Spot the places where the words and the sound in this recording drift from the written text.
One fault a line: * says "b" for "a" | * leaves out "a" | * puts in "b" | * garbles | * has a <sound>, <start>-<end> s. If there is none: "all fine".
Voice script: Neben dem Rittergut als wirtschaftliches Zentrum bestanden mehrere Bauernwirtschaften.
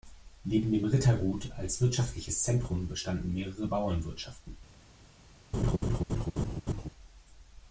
* has a laugh, 5.5-6.9 s